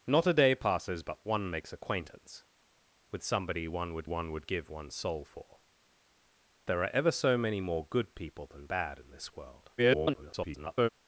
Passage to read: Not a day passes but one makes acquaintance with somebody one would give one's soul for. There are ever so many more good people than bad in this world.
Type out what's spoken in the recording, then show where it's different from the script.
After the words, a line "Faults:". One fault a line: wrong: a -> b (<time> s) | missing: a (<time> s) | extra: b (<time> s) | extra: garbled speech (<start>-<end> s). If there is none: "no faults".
Not a day passes but one makes acquaintance with somebody one would one would give one's soul for. There are ever so many more good people than bad in this world. [garbled]
Faults:
extra: one would (4.0 s)
extra: garbled speech (9.8-10.9 s)